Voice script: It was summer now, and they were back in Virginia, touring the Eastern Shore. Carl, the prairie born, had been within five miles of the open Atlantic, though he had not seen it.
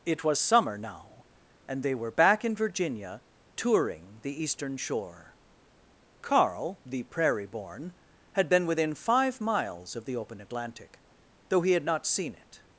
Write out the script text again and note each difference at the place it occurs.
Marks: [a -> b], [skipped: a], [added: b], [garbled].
It was summer now, and they were back in Virginia, touring the Eastern Shore. Carl, the prairie born, had been within five miles of the open Atlantic, though he had not seen it.